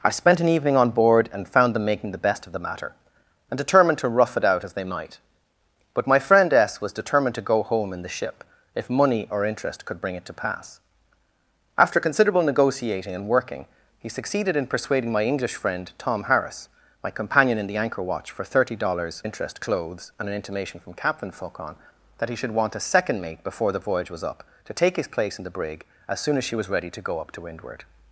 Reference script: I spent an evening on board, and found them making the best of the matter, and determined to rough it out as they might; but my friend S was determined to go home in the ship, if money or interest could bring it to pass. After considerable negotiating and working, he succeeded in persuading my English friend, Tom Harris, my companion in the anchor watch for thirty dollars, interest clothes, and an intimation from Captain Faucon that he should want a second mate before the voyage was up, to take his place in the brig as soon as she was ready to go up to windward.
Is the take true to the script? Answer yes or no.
yes